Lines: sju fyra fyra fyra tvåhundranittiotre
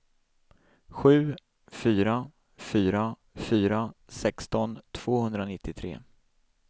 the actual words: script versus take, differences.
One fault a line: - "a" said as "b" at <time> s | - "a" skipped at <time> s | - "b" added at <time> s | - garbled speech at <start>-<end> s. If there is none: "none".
- "sexton" added at 4.1 s